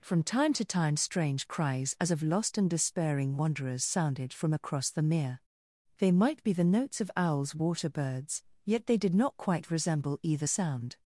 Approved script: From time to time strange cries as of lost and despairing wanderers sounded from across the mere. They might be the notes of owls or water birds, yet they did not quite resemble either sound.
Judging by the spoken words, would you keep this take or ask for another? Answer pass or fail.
fail